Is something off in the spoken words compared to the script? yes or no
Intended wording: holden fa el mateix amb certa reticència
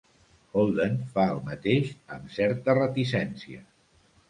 no